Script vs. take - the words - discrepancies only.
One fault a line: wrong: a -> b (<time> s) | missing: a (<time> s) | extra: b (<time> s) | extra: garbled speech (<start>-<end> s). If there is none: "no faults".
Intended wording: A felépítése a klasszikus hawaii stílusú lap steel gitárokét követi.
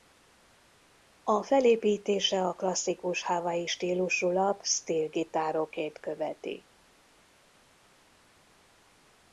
no faults